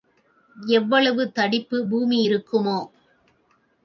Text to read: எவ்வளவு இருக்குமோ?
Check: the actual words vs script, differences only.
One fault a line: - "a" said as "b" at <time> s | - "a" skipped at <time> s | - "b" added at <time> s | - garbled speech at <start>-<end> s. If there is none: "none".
- "தடிப்பு பூமி" added at 1.3 s